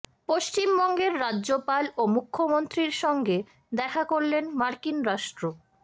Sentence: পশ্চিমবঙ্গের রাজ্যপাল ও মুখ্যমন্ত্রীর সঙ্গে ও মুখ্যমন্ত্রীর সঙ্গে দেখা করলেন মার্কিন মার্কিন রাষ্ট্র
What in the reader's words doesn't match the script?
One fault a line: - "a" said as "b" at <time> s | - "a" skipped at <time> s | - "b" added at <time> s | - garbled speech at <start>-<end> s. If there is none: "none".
- "ও মুখ্যমন্ত্রীর সঙ্গে" skipped at 3.4 s
- "মার্কিন" skipped at 5.0 s